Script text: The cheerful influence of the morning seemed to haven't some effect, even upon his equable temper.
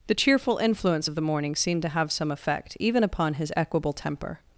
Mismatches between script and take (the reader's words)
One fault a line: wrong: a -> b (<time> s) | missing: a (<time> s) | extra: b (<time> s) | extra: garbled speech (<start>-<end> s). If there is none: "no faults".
wrong: haven't -> have (1.9 s)